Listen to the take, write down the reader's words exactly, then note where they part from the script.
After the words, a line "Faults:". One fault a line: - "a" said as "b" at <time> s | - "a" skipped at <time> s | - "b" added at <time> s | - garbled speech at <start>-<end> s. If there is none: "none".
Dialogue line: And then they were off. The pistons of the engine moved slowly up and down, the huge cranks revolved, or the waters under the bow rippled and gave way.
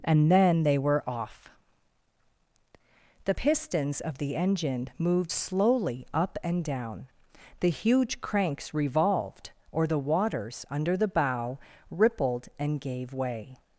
And then they were off. The pistons of the engine moved slowly up and down, the huge cranks revolved, or the waters under the bow rippled and gave way.
Faults:
none